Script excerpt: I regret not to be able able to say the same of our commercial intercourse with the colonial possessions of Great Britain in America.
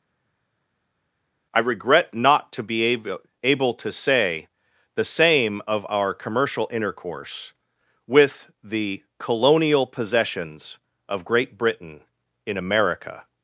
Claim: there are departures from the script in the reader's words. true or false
false